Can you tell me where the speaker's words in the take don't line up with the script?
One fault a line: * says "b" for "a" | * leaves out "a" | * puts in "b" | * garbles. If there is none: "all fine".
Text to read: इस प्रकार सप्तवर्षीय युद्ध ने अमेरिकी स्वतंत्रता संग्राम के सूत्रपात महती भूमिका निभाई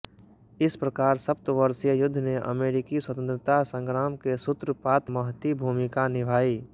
all fine